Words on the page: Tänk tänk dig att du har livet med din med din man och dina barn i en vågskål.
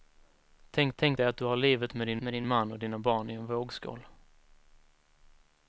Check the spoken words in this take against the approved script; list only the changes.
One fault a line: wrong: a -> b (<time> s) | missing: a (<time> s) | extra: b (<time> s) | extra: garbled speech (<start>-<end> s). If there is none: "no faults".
no faults